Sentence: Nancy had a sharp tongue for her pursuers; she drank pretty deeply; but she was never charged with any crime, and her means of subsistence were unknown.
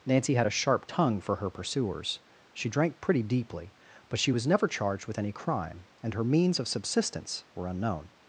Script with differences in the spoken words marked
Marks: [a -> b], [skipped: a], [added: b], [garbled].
Nancy had a sharp tongue for her pursuers; she drank pretty deeply; but she was never charged with any crime, and her means of subsistence were unknown.